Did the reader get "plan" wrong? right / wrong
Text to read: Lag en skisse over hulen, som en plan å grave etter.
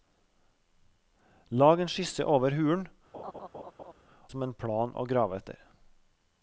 right